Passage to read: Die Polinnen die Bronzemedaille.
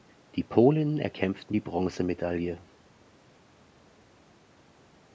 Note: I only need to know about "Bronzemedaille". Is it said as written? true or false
true